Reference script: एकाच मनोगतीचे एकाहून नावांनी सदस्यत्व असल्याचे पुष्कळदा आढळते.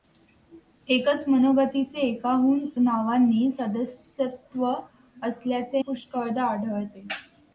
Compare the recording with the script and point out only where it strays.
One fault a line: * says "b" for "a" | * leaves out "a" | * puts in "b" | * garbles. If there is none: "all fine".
all fine